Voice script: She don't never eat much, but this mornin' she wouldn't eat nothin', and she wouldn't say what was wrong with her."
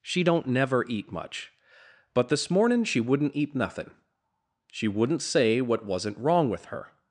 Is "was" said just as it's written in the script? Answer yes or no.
no